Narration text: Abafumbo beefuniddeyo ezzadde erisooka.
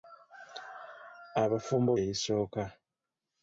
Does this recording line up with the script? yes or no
no